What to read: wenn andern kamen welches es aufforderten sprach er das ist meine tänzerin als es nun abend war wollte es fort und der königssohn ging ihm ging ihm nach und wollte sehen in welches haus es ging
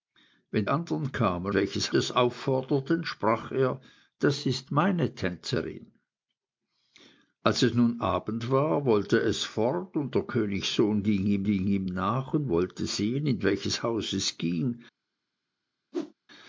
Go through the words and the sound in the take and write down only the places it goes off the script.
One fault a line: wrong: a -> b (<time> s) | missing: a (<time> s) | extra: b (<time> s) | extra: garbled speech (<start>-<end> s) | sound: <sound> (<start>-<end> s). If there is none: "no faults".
sound: whoosh (15.9-16.1 s)